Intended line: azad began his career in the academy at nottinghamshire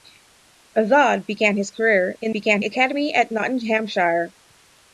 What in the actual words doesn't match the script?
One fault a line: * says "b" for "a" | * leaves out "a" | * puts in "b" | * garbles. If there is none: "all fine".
* says "began" for "the"